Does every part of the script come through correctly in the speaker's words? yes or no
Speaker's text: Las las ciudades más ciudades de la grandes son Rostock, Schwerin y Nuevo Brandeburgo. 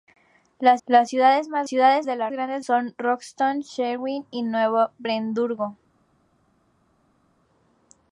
yes